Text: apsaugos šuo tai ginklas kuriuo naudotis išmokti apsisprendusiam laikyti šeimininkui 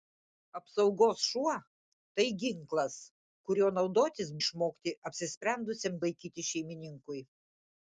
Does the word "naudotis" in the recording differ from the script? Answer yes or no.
no